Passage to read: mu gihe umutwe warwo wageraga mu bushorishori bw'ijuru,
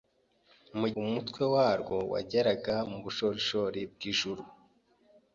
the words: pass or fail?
fail